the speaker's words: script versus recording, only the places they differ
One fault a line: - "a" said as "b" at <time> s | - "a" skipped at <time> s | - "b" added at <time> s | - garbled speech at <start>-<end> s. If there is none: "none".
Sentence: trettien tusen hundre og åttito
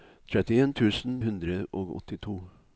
none